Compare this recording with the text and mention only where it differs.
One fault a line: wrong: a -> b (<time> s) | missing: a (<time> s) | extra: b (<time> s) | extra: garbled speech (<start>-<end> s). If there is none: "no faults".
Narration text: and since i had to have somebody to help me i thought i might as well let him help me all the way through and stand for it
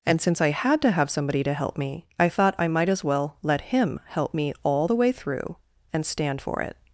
no faults